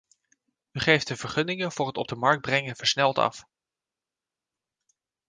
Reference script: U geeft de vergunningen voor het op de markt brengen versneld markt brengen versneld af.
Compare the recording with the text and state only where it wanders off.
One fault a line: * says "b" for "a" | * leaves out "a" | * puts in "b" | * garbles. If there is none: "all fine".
* leaves out "markt brengen versneld"